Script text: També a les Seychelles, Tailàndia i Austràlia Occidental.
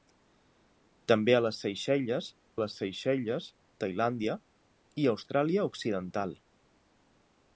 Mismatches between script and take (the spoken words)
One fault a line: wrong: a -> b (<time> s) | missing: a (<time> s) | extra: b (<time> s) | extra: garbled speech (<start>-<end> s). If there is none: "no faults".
extra: les Seychelles (2.6 s)